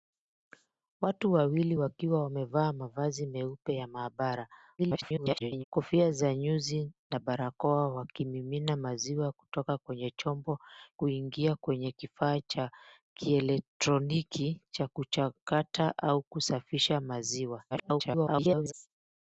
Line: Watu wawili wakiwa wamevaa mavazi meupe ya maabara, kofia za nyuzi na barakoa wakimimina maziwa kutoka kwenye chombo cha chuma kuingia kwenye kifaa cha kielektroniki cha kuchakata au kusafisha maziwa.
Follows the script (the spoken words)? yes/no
no